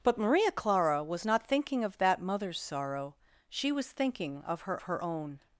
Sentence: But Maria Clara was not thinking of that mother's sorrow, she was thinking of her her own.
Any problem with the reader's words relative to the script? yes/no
no